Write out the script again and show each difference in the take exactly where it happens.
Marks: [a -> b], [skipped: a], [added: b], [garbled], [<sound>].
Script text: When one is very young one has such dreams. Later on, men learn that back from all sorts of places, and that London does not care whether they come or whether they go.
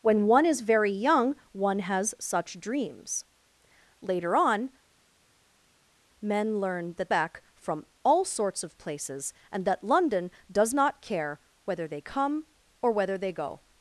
When one is very young one has such dreams. Later on, men learn that back from all sorts of places, and that London does not care whether they come or whether they go.